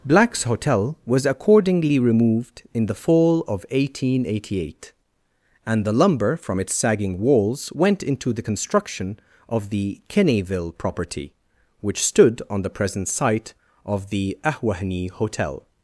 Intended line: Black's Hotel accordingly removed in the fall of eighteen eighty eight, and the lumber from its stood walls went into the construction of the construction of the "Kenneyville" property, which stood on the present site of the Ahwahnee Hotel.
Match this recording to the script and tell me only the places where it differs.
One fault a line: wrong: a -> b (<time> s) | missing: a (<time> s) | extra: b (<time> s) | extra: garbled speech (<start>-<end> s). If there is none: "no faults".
extra: was (1.1 s)
wrong: stood -> sagging (6.7 s)
missing: construction of the (10.0 s)